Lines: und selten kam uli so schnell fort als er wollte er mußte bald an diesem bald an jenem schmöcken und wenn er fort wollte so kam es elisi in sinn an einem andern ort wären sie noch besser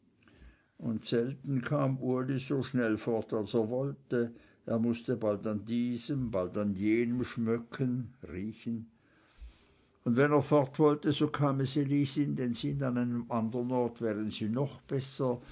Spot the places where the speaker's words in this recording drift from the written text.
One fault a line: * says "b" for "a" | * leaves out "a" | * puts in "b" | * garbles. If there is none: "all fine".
all fine